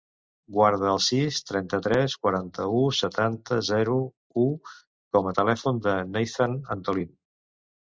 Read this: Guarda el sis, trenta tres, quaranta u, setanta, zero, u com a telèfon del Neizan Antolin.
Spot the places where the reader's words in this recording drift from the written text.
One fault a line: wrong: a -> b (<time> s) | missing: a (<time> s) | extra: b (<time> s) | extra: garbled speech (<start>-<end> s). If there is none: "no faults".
no faults